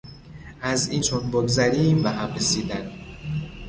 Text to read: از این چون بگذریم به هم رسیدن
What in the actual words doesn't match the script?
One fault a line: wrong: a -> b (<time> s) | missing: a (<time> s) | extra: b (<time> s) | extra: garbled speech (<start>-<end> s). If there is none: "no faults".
no faults